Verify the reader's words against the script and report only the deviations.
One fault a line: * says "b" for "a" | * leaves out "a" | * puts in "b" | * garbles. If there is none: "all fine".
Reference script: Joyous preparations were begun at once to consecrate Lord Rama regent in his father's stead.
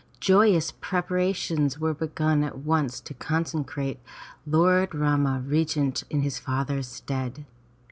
all fine